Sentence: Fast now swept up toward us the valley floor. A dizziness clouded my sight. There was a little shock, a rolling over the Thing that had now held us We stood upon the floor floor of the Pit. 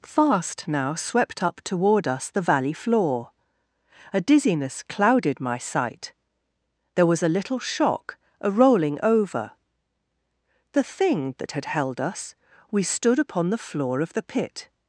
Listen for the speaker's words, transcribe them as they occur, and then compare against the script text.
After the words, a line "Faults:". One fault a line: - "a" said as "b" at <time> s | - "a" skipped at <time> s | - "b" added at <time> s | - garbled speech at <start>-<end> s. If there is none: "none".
Fast now swept up toward us the valley floor. A dizziness clouded my sight. There was a little shock, a rolling over the Thing that had held us We stood upon the floor of the Pit.
Faults:
- "now" skipped at 11.7 s
- "floor" skipped at 14.0 s